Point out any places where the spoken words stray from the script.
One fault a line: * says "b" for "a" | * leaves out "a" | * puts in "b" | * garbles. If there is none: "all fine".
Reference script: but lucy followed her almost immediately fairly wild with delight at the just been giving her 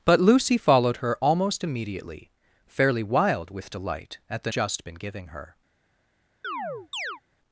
all fine